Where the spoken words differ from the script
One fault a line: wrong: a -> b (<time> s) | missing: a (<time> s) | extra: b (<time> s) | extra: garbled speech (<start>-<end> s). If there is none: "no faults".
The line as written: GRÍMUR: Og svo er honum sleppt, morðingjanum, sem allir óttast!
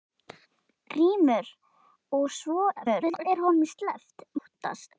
extra: garbled speech (2.8-3.3 s)
missing: morðingjanum sem allir (4.3 s)